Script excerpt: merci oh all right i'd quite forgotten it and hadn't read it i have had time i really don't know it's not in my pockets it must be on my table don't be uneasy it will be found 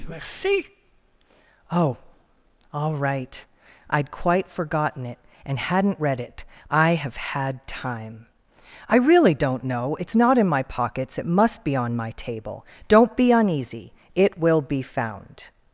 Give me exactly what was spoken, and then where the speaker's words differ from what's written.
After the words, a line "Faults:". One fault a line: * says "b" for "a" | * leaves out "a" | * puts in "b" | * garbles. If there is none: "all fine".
merci oh all right i'd quite forgotten it and hadn't read it i have had time i really don't know it's not in my pockets it must be on my table don't be uneasy it will be found
Faults:
all fine